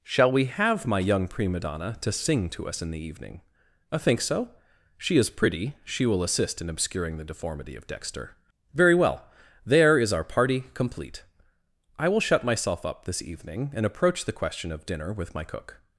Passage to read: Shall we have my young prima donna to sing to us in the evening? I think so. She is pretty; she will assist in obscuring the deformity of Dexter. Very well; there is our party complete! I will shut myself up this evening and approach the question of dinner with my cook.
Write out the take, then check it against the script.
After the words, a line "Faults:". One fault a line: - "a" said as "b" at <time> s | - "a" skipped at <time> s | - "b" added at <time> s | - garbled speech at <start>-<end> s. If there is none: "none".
Shall we have my young prima donna to sing to us in the evening? I think so. She is pretty; she will assist in obscuring the deformity of Dexter. Very well; there is our party complete! I will shut myself up this evening and approach the question of dinner with my cook.
Faults:
none